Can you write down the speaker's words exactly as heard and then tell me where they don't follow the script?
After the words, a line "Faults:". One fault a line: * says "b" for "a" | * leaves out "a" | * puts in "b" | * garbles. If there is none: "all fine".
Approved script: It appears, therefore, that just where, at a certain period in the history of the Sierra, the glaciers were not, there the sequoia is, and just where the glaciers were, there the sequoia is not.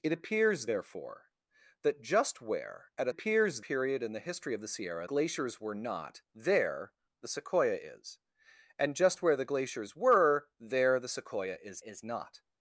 It appears, therefore, that just where, at a appears period in the history of the Sierra, glaciers were not, there the sequoia is, and just where the glaciers were, there the sequoia is is not.
Faults:
* says "appears" for "certain"
* leaves out "the"
* puts in "is"